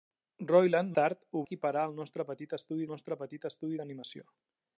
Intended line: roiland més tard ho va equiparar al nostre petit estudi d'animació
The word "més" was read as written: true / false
false